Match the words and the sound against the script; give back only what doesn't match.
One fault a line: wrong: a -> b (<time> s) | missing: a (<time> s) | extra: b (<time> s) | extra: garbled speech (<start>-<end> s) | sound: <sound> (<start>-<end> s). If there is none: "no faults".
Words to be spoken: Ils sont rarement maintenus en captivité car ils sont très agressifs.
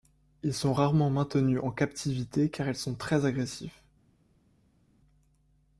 no faults